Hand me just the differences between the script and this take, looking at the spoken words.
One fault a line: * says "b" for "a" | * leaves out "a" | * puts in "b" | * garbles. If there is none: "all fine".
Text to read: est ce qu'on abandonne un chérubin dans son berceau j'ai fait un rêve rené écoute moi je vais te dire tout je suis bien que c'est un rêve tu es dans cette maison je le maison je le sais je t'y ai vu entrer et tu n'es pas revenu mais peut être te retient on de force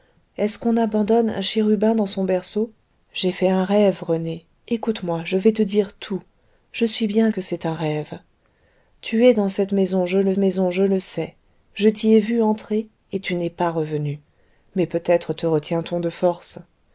all fine